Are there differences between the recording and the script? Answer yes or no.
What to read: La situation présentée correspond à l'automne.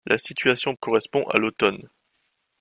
yes